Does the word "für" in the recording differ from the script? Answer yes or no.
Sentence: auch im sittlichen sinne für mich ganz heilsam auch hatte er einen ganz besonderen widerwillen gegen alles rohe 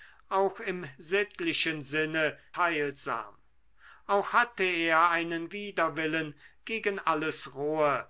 yes